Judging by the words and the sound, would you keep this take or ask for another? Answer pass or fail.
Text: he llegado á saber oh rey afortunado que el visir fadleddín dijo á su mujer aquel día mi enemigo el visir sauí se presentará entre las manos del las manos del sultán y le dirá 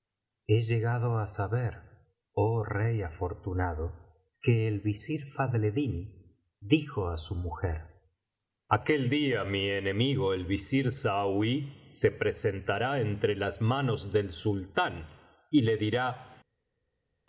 fail